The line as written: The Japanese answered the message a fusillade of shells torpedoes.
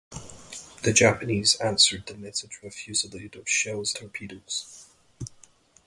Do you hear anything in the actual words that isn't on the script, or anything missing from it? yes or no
no